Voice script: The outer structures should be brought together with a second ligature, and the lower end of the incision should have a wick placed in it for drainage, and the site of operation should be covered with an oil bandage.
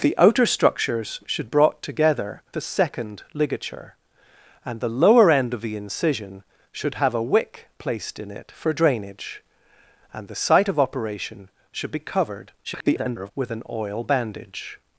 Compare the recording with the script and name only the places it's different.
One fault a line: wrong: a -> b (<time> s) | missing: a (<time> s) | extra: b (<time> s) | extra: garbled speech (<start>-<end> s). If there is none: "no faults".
missing: be (1.5 s)
missing: with (2.4 s)
extra: garbled speech (12.6-13.3 s)